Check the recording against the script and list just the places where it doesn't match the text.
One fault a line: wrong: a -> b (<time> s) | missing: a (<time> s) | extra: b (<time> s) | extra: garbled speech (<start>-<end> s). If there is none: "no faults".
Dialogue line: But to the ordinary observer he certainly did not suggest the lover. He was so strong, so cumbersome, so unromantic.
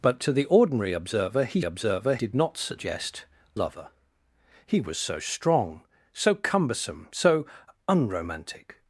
wrong: certainly -> observer (1.6 s)
missing: the (3.3 s)